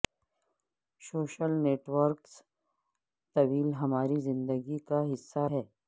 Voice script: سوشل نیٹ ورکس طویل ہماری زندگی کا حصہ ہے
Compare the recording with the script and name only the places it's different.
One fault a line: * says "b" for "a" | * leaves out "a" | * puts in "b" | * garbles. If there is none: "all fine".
all fine